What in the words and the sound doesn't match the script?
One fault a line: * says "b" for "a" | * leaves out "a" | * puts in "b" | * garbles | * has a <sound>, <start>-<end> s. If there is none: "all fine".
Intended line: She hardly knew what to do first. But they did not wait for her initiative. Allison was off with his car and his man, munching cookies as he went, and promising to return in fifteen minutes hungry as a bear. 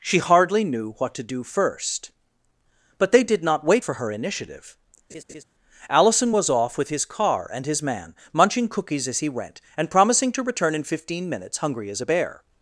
* has a laugh, 5.1-5.4 s